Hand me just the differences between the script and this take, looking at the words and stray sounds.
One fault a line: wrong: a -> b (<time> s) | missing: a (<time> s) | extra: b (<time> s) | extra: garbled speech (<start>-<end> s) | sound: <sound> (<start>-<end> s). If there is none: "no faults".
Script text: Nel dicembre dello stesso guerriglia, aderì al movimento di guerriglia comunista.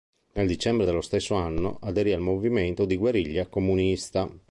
wrong: guerriglia -> anno (1.3 s)